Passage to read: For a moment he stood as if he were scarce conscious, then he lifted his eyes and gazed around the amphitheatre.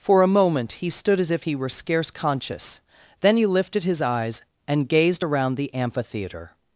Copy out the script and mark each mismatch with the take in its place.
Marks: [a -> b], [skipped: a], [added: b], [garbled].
For a moment he stood as if he were scarce conscious, then he lifted his eyes and gazed around the amphitheatre.